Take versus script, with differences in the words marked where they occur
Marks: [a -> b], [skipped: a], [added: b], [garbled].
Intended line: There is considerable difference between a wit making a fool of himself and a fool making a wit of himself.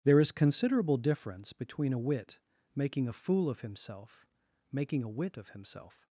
There is considerable difference between a wit making a fool of himself [skipped: and a fool] making a wit of himself.